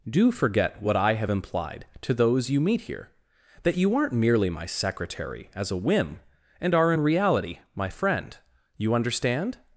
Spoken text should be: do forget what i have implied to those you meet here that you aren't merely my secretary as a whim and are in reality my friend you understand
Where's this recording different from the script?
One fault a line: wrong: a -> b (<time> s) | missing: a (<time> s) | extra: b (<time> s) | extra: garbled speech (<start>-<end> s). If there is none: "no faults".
no faults